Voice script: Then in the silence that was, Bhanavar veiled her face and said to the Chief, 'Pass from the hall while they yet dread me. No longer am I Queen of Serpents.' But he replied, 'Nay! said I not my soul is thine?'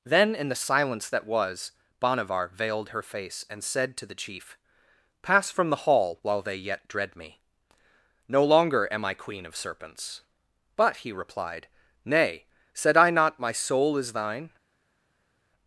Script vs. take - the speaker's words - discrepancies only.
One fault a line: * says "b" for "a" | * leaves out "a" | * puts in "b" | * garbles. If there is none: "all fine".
all fine